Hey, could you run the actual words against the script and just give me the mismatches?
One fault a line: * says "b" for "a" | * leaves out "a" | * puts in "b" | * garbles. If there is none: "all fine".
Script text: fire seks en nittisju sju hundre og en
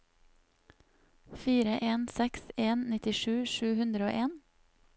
* puts in "en"